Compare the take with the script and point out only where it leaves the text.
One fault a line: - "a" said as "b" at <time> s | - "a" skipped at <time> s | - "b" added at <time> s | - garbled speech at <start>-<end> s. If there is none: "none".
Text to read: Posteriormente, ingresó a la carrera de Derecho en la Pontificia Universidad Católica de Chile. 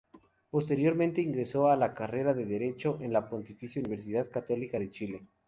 none